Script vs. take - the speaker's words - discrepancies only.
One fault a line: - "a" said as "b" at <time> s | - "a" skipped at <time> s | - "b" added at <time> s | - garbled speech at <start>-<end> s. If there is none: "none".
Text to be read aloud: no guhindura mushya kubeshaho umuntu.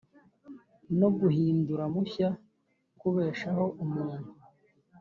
none